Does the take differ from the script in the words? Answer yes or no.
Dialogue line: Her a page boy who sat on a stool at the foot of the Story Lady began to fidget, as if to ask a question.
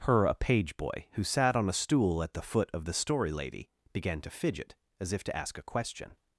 no